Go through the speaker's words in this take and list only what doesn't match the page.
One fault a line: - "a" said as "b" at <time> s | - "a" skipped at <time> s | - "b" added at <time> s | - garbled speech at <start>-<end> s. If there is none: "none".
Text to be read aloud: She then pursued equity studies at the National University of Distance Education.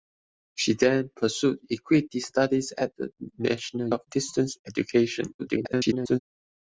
- "University" skipped at 3.9 s
- garbled speech at 5.4-6.2 s